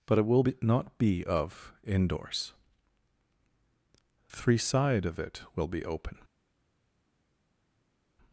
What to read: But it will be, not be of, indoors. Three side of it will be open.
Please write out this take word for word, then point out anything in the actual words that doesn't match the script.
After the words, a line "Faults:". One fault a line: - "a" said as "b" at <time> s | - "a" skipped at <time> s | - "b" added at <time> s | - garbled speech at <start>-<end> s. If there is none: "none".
But it will be, not be of, indoors. Three side of it will be open.
Faults:
none